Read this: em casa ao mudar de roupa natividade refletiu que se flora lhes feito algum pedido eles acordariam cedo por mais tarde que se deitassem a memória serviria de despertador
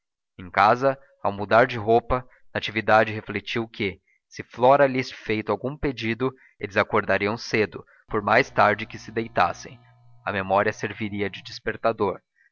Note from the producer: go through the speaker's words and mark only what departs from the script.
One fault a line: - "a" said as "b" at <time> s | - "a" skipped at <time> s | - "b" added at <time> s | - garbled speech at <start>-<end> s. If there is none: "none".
none